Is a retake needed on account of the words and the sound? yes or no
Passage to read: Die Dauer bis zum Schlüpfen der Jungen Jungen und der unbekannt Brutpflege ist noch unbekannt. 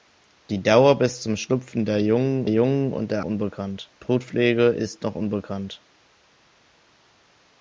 no